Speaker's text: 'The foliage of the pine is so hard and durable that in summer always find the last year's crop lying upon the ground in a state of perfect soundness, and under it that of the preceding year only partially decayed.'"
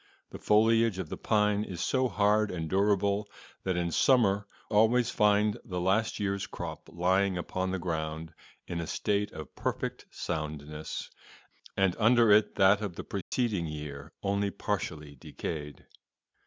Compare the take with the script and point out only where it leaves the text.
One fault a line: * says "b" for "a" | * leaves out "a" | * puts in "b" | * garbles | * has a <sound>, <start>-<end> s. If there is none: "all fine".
* has a dropout, 13.2-13.3 s